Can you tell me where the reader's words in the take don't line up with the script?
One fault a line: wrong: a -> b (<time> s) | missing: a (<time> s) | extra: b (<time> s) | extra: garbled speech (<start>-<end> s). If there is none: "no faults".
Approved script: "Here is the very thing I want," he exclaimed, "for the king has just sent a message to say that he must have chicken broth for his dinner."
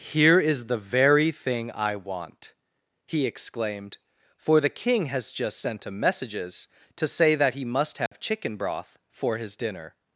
wrong: message -> messages (5.9 s)